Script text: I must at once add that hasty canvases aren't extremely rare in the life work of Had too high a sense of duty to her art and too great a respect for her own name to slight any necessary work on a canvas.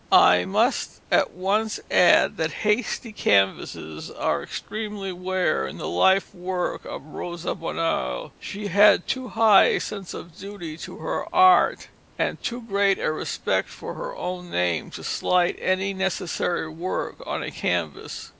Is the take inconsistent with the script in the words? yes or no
yes